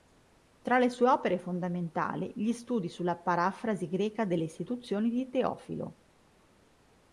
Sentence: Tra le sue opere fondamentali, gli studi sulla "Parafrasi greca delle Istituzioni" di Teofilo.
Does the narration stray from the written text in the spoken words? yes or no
no